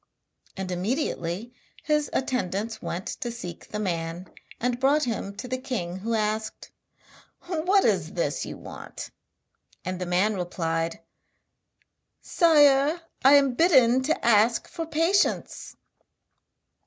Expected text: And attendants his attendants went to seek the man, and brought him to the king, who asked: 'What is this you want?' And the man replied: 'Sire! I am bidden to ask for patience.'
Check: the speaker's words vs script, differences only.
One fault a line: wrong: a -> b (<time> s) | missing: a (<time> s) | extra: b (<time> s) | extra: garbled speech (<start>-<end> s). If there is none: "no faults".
wrong: attendants -> immediately (0.7 s)